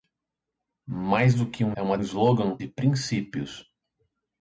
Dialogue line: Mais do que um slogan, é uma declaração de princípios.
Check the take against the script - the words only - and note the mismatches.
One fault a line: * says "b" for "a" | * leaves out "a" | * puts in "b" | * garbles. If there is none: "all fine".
* leaves out "slogan"
* says "slogan" for "declaração"